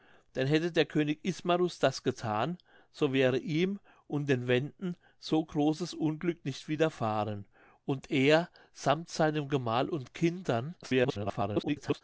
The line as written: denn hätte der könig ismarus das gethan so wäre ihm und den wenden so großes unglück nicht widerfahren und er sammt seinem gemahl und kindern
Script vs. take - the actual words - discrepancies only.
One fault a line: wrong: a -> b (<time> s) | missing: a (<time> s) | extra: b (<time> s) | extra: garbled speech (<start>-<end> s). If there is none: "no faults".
extra: garbled speech (10.8-12.0 s)